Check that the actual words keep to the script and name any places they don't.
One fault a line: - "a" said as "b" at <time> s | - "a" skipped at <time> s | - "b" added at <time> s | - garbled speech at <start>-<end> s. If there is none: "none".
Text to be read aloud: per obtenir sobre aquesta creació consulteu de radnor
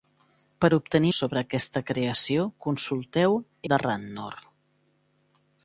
none